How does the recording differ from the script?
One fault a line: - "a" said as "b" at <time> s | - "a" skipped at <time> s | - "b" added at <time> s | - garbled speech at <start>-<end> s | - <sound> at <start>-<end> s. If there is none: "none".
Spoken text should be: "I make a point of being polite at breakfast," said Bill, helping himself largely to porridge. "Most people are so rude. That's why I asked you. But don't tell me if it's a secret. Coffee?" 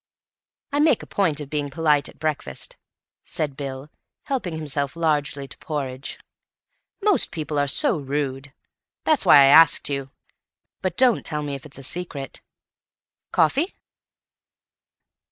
none